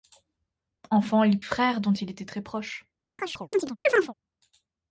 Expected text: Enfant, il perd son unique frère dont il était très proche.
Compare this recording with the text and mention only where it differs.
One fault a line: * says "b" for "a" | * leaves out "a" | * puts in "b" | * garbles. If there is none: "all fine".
* leaves out "perd son unique"